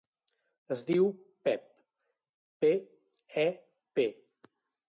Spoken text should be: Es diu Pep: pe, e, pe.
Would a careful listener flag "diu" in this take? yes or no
no